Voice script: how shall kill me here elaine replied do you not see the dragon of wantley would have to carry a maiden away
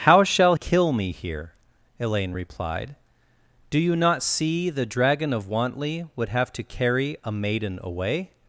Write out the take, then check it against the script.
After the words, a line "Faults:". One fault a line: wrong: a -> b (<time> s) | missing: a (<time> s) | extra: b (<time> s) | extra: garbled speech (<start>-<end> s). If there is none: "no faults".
how shall kill me here elaine replied do you not see the dragon of wantley would have to carry a maiden away
Faults:
no faults